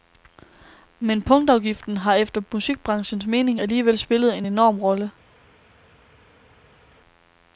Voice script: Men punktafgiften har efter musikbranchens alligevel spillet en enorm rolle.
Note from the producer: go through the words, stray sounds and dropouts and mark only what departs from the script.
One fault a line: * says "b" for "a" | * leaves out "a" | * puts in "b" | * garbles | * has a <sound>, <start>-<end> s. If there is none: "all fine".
* puts in "mening"